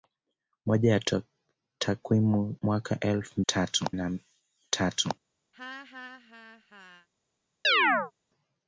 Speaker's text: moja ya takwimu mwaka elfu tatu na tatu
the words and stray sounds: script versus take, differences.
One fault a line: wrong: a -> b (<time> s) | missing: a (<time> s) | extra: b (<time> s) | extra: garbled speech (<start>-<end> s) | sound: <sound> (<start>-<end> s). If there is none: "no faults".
sound: laugh (5.5-7.1 s)
sound: chirp (7.6-8.1 s)